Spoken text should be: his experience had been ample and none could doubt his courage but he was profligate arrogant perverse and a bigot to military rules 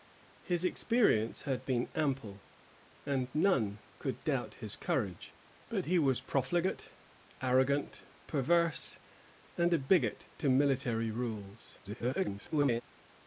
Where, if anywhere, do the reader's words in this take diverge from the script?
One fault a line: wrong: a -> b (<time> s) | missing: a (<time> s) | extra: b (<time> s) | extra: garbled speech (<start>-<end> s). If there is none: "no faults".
extra: garbled speech (11.8-12.8 s)